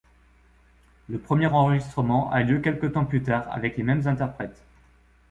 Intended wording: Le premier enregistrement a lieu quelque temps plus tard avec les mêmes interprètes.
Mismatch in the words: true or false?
false